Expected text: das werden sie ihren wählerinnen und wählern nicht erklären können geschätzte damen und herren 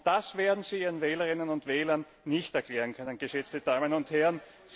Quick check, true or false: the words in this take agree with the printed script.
true